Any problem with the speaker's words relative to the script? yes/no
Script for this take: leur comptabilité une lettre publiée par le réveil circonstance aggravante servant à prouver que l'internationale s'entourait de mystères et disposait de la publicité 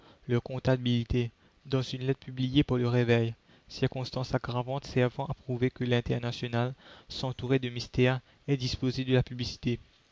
yes